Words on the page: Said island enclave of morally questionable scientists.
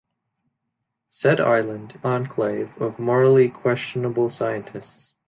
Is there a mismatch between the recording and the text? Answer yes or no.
no